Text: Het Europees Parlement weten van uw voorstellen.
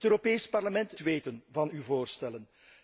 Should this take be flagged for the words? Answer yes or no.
no